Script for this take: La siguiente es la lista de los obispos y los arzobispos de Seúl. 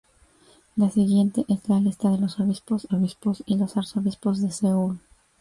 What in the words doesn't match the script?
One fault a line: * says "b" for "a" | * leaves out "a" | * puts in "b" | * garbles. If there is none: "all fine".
* puts in "obispos"